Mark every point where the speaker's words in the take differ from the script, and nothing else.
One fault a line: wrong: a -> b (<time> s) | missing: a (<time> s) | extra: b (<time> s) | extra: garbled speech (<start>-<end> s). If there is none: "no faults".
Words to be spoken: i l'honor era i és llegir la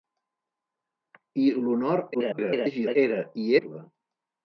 extra: garbled speech (2.1-3.0 s)
missing: és llegir (3.5 s)